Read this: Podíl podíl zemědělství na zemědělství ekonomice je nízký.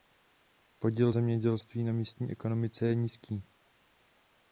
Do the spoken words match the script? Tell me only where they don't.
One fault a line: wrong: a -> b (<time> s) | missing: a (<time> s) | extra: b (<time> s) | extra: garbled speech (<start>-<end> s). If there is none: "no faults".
missing: podíl (1.1 s)
wrong: zemědělství -> místní (1.9 s)